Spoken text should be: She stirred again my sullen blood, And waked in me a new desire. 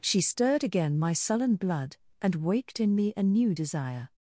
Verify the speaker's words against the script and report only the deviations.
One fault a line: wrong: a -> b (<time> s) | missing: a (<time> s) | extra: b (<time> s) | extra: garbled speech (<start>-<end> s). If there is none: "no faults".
no faults